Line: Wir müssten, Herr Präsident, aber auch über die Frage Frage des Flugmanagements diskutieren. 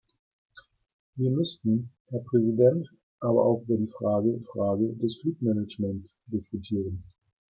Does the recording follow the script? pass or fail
pass